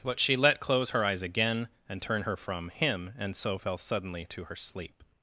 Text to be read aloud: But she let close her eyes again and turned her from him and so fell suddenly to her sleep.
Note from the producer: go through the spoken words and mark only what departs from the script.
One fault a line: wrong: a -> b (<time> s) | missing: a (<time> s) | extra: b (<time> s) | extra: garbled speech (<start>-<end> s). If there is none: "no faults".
wrong: turned -> turn (2.0 s)